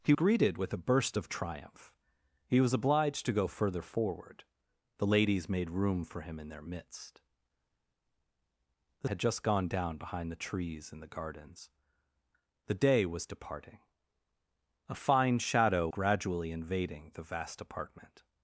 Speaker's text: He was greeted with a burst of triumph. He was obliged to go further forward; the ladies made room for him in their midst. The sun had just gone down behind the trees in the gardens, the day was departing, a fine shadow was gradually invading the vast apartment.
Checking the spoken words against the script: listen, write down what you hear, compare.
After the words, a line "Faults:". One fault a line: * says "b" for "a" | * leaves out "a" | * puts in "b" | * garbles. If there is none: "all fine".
He greeted with a burst of triumph. He was obliged to go further forward; the ladies made room for him in their midst. The had just gone down behind the trees in the gardens, the day was departing, a fine shadow gradually invading the vast apartment.
Faults:
* leaves out "was"
* leaves out "sun"
* leaves out "was"